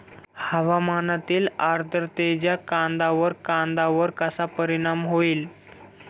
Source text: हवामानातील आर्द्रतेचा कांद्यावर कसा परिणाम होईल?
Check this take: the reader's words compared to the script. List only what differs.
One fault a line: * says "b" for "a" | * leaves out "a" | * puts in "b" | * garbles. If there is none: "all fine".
* puts in "कांद्यावर"